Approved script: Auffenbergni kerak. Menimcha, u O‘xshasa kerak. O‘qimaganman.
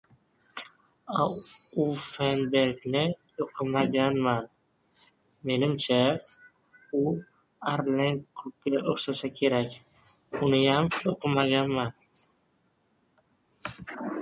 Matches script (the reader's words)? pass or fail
fail